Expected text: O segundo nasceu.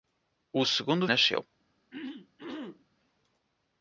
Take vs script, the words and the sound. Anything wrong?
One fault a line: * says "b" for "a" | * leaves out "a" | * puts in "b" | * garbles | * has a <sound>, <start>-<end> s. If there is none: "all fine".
* has a throat clearing, 1.9-2.8 s